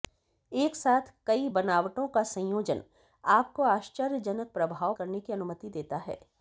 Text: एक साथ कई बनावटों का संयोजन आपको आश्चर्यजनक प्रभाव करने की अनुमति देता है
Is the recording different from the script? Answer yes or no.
no